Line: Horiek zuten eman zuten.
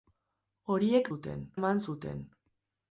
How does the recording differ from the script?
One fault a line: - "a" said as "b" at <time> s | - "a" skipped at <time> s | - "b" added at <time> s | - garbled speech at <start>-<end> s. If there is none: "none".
none